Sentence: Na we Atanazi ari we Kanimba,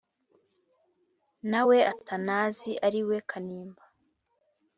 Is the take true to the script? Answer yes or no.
yes